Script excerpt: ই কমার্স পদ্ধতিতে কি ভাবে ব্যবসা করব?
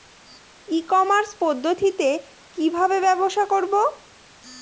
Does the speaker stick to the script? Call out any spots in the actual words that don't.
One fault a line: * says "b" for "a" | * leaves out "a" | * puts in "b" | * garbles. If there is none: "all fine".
all fine